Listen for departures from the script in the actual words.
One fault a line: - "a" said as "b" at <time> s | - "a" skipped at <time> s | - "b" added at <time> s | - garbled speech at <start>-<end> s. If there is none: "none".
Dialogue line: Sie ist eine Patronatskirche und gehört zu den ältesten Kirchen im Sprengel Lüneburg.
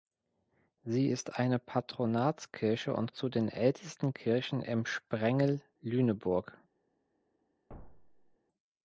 - "gehört" skipped at 3.1 s